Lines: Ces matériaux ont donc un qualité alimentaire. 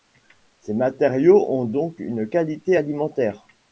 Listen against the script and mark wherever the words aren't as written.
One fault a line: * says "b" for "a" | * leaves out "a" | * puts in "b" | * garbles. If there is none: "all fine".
* says "une" for "un"